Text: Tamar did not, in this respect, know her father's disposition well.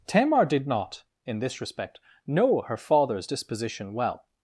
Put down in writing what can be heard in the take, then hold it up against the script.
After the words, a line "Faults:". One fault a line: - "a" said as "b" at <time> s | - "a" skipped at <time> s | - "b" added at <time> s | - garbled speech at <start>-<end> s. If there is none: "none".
Tamar did not, in this respect, know her father's disposition well.
Faults:
none